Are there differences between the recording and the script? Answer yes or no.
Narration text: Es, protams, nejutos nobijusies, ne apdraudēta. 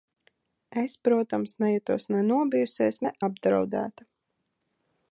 yes